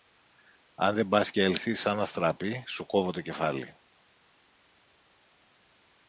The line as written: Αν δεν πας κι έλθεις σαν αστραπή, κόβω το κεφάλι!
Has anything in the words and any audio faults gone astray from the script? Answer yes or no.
yes